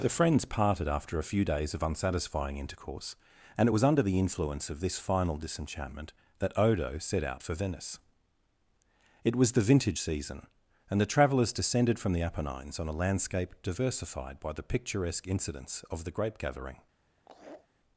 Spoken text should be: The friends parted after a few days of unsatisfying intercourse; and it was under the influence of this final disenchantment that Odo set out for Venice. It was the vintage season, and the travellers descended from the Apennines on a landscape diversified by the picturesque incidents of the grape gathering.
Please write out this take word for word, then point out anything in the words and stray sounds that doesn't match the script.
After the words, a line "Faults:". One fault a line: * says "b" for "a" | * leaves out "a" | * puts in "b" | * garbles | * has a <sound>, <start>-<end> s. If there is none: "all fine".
The friends parted after a few days of unsatisfying intercourse; and it was under the influence of this final disenchantment that Odo set out for Venice. It was the vintage season, and the travellers descended from the Apennines on a landscape diversified by the picturesque incidents of the grape gathering.
Faults:
* has a laugh, 17.2-17.7 s